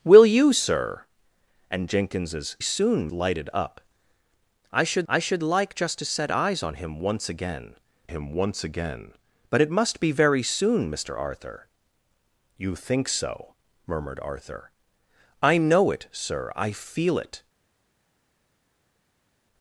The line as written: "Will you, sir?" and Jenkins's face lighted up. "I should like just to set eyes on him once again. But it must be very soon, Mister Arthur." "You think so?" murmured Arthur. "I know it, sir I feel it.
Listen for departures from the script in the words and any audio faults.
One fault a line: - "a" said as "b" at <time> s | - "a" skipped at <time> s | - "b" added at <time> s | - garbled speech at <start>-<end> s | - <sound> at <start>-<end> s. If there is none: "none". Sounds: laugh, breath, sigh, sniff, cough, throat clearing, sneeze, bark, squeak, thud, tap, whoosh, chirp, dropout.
- "face" said as "soon" at 2.6 s
- "I should" added at 5.1 s
- "him once again" added at 8.0 s